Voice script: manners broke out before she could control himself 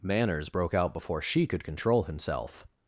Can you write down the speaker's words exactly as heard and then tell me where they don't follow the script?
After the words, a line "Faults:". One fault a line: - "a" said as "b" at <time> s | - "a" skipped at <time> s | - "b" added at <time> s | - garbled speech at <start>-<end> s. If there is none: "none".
manners broke out before she could control himself
Faults:
none